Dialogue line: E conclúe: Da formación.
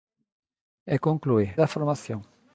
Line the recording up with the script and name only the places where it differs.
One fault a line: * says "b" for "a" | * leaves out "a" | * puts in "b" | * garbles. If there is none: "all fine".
all fine